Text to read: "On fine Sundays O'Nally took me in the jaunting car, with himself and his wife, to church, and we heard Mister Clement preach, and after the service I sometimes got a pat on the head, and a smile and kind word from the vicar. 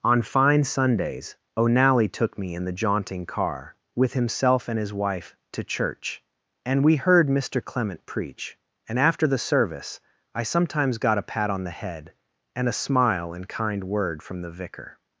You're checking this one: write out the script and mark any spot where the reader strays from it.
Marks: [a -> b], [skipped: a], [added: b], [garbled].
"On fine Sundays O'Nally took me in the jaunting car, with himself and his wife, to church, and we heard Mister Clement preach, and after the service I sometimes got a pat on the head, and a smile and kind word from the vicar.